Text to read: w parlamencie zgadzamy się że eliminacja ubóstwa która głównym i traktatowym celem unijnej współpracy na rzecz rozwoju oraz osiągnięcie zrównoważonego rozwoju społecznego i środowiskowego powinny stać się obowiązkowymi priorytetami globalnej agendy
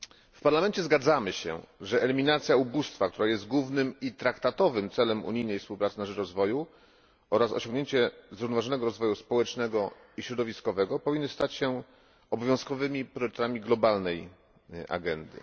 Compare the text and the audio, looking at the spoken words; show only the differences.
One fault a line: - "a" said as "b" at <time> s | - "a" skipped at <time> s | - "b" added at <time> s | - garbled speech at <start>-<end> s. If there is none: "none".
- "jest" added at 3.3 s